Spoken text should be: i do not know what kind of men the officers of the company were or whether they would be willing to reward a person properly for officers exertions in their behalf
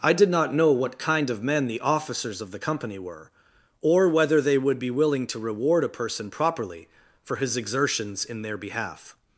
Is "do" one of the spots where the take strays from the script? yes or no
yes